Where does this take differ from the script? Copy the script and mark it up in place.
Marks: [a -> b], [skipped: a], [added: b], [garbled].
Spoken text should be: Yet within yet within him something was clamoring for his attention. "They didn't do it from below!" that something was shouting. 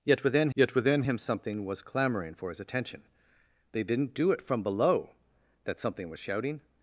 Yet within yet within him something was clamoring for his attention. "They didn't do it from below!" that something was shouting.